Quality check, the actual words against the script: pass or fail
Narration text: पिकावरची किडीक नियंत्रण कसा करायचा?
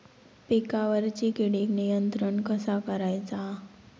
pass